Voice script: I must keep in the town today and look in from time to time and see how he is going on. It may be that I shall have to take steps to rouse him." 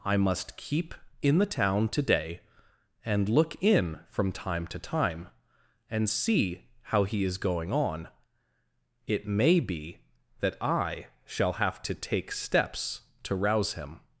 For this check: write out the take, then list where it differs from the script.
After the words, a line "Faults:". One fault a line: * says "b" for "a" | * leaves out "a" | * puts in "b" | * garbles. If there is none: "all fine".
I must keep in the town today and look in from time to time and see how he is going on. It may be that I shall have to take steps to rouse him."
Faults:
all fine